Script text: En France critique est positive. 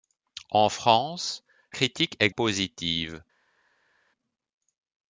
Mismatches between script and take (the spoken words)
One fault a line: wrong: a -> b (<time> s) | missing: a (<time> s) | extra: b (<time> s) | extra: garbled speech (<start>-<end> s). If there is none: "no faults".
no faults